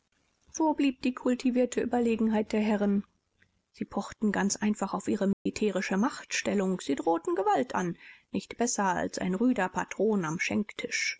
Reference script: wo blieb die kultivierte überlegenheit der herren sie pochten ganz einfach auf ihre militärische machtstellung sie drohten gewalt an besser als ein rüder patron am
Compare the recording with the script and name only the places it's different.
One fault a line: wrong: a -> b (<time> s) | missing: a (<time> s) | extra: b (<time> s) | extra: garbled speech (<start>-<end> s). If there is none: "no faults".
extra: nicht (8.3 s)